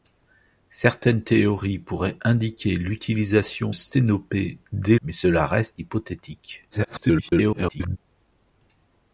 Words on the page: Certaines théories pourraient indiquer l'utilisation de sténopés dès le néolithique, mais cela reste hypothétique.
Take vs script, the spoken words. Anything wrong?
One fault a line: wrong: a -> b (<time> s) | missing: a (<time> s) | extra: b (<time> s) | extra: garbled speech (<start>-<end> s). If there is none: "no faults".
missing: de (3.7 s)
missing: le néolithique (5.0 s)
extra: garbled speech (6.7-8.0 s)